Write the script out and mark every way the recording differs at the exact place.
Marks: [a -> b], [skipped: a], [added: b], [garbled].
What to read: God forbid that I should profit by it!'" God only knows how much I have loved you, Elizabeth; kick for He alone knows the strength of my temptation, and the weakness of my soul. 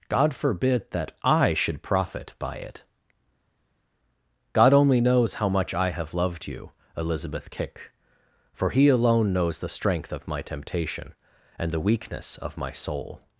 God forbid that I should profit by it!'" God only knows how much I have loved you, Elizabeth; kick for He alone knows the strength of my temptation, and the weakness of my soul.